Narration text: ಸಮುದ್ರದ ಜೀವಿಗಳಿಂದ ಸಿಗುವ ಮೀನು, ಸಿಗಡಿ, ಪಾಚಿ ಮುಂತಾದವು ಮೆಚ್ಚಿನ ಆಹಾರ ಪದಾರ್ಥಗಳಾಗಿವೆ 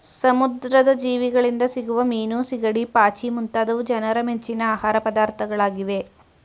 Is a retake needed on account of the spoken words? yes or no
yes